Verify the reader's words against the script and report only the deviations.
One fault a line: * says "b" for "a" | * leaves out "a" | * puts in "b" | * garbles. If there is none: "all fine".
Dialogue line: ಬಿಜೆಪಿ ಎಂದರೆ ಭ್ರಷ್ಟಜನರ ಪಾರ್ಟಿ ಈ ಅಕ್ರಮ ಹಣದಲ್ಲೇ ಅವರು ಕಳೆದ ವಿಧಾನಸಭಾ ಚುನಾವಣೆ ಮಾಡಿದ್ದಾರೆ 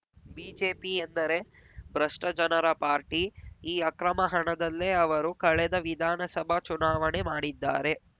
all fine